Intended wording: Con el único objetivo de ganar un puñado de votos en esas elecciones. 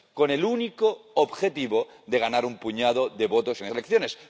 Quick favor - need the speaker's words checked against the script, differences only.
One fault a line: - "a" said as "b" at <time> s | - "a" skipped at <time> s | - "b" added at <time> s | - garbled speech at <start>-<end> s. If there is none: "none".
- "esas" skipped at 3.7 s